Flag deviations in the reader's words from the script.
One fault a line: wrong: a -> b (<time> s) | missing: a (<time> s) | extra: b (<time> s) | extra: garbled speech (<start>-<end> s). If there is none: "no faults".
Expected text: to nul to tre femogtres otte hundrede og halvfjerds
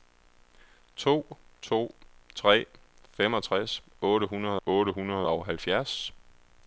missing: nul (1.4 s)
extra: otte hundrede (4.6 s)